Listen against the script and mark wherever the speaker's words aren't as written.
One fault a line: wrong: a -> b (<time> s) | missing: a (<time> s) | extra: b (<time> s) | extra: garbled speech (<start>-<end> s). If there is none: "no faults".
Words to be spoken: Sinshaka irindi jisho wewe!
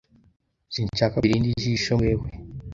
no faults